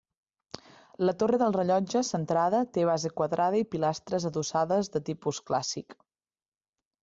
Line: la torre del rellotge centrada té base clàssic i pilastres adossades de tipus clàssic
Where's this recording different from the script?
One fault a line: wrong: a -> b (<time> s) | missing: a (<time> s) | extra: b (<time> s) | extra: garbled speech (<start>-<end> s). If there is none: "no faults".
wrong: clàssic -> quadrada (3.2 s)